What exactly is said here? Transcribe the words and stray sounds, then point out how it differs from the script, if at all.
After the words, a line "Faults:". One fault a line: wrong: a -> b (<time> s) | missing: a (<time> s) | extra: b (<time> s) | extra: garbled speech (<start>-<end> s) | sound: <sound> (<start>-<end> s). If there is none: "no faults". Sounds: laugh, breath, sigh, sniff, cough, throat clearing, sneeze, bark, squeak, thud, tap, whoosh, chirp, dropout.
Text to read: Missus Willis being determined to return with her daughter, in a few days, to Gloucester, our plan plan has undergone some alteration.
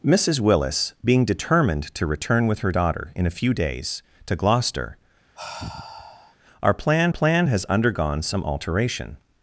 Missus Willis being determined to return with her daughter, in a few days, to Gloucester, our plan plan has undergone some alteration.
Faults:
sound: sigh (5.3-6.4 s)